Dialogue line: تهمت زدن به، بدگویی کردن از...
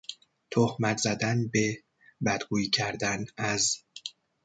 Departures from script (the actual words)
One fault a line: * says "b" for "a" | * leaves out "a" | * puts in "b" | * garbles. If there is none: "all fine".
all fine